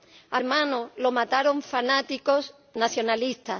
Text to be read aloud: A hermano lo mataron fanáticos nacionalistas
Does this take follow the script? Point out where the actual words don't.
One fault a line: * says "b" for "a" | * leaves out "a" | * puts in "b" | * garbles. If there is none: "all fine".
all fine